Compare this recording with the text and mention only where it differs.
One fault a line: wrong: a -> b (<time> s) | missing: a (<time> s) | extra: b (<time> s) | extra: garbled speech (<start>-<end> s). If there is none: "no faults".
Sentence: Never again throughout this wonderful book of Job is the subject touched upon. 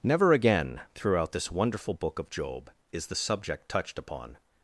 no faults